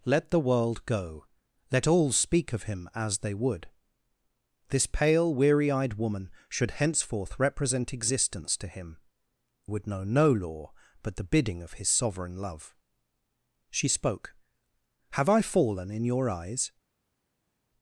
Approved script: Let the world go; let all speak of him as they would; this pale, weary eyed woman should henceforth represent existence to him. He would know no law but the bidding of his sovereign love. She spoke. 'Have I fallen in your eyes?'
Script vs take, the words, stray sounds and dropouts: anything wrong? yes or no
yes